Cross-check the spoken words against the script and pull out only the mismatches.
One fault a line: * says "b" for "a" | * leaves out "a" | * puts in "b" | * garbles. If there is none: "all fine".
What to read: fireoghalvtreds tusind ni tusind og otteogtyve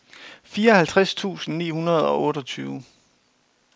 * says "hundrede" for "tusind"